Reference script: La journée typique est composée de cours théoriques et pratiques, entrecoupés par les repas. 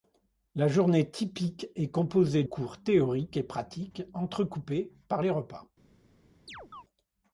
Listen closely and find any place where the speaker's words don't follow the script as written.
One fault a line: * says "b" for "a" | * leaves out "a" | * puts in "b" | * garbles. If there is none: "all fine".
* leaves out "de"